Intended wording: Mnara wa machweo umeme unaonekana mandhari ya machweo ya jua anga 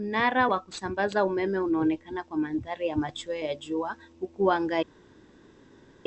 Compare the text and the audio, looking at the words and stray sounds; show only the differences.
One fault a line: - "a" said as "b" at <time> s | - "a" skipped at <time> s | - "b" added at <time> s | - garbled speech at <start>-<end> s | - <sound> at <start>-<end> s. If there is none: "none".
- "machweo" said as "kusambaza" at 0.6 s
- "kwa" added at 2.2 s
- "huku" added at 4.2 s